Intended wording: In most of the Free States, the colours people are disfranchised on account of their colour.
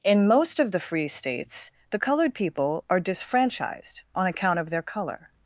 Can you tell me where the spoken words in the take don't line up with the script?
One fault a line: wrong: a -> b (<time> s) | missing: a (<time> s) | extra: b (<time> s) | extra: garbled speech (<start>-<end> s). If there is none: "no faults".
wrong: colours -> coloured (2.0 s)